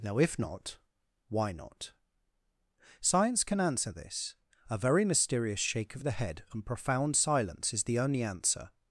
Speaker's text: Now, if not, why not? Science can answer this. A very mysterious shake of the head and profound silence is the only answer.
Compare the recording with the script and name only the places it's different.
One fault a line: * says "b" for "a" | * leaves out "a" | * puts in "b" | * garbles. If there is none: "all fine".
all fine